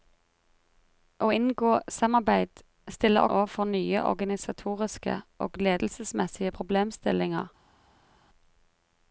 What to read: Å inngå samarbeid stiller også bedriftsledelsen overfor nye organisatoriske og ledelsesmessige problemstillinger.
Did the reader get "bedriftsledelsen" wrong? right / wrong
wrong